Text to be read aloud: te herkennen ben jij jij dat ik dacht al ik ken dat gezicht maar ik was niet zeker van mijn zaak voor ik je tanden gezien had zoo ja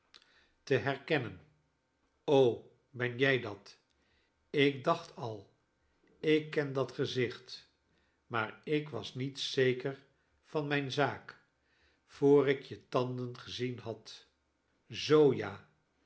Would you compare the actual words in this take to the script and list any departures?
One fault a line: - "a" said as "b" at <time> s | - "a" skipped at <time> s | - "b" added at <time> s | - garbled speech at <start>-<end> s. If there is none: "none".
- "jij" skipped at 3.4 s